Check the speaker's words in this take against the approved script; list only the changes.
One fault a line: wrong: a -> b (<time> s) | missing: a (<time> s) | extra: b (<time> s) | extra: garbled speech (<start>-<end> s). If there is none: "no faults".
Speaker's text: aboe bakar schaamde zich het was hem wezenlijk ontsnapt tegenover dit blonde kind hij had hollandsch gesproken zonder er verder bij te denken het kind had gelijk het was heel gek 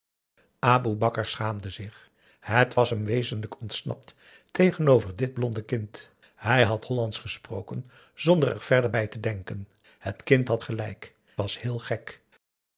missing: het (11.1 s)